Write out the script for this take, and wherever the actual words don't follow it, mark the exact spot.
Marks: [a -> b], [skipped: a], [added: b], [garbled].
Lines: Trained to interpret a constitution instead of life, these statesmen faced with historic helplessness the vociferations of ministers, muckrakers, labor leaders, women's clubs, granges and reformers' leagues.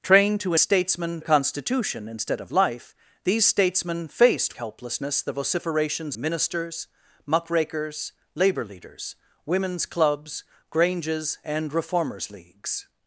Trained to [interpret -> statesmen] a constitution instead of life, these statesmen faced [skipped: with historic] helplessness the vociferations [skipped: of] ministers, muckrakers, labor leaders, women's clubs, granges and reformers' leagues.